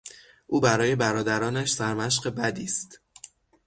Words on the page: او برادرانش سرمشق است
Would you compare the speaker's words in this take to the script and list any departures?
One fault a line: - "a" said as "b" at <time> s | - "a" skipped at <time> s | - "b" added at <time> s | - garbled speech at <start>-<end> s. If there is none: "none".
- "برای" added at 0.6 s
- "بدی" added at 2.3 s